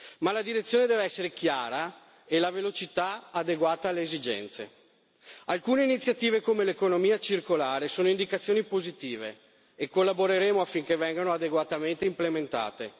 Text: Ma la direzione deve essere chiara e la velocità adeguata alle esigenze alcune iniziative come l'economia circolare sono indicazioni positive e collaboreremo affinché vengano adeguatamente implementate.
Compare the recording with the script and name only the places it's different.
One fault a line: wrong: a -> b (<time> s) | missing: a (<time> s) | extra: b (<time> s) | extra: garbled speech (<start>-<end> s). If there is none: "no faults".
no faults